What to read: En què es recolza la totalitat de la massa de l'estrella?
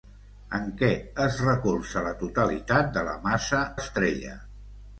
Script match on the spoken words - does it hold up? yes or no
no